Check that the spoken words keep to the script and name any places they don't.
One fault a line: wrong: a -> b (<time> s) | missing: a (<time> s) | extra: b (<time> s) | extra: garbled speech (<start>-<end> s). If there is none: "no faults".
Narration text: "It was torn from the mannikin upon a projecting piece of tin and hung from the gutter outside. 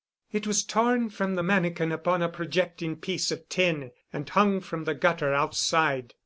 no faults